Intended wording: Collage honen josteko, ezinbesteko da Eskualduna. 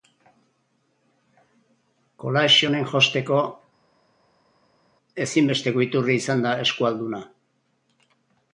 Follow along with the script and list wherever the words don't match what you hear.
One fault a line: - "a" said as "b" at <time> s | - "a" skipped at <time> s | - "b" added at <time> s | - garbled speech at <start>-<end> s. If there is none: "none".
- "iturri izan" added at 5.9 s